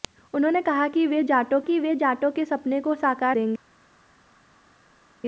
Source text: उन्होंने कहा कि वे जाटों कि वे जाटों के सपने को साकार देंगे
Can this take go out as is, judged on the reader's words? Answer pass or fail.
pass